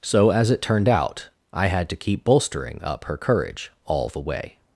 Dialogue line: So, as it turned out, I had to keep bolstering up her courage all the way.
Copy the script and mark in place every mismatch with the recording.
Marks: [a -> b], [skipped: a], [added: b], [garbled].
So, as it turned out, I had to keep bolstering up her courage all the way.